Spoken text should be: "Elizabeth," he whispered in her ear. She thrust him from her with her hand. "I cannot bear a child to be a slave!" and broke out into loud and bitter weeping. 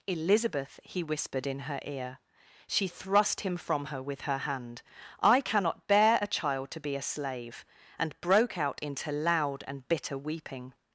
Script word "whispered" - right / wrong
right